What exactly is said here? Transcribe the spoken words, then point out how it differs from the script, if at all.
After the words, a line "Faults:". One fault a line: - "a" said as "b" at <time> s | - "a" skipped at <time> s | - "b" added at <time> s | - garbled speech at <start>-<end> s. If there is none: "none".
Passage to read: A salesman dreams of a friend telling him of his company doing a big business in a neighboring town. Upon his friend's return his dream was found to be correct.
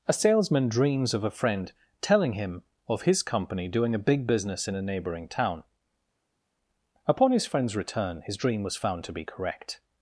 A salesman dreams of a friend telling him of his company doing a big business in a neighboring town. Upon his friend's return his dream was found to be correct.
Faults:
none